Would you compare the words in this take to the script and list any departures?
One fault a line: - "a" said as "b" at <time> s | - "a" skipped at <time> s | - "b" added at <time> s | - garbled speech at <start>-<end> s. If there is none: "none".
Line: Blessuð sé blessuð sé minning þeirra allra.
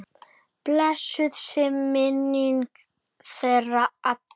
- "blessuð sé" skipped at 1.7 s